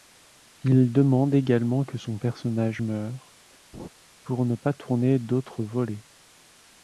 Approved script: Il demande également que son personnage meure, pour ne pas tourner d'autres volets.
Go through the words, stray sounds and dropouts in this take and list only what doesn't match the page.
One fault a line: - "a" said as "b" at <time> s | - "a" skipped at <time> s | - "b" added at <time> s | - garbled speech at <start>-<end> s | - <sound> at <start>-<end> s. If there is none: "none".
- laugh at 3.7-3.9 s